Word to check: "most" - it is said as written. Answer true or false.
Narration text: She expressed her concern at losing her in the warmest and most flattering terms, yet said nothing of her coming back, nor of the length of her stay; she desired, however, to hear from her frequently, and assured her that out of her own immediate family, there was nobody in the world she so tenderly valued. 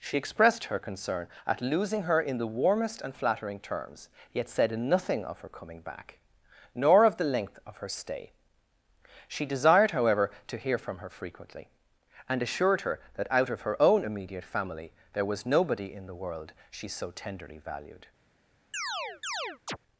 false